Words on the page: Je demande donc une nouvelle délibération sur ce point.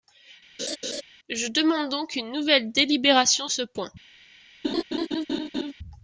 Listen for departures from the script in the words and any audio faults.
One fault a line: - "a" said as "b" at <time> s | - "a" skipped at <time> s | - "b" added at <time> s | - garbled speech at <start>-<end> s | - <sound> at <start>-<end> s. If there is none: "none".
- laugh at 0.6-1.0 s
- "sur" skipped at 3.5 s
- laugh at 4.6-5.7 s